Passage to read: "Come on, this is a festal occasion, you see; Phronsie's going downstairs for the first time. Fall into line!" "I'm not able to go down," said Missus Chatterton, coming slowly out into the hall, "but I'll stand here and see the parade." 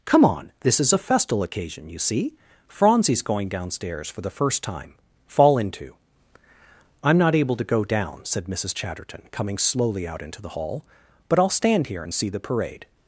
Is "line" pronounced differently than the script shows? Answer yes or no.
yes